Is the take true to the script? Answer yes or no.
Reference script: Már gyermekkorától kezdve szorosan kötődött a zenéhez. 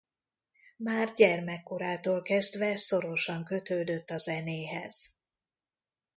yes